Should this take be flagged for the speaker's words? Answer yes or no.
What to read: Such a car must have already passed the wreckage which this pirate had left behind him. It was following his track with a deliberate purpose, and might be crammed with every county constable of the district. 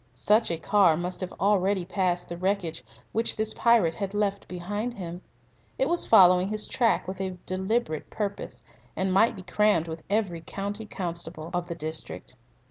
no